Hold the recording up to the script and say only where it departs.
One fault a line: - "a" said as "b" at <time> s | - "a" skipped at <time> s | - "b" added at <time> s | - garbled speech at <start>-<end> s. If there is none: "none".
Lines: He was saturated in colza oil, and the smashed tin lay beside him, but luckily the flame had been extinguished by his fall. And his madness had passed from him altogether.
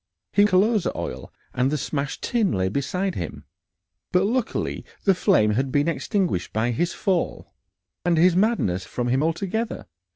- "was saturated in" skipped at 0.5 s
- "had passed" skipped at 8.9 s